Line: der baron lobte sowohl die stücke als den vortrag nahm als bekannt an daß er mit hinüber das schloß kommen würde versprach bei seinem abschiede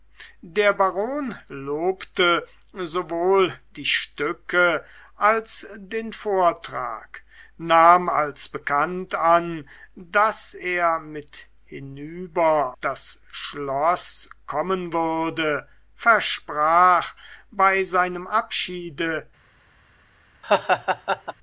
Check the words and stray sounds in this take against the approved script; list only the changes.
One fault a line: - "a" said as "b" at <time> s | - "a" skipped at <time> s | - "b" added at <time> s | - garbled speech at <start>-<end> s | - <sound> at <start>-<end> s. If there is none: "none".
- laugh at 20.4-21.3 s